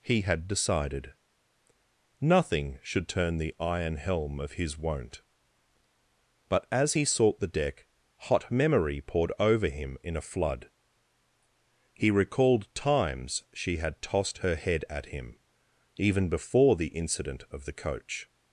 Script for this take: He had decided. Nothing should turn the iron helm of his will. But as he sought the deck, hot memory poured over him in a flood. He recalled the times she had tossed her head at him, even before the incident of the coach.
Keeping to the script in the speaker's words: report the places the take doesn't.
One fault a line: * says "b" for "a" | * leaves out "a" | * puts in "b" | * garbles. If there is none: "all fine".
* says "won't" for "will"
* leaves out "the"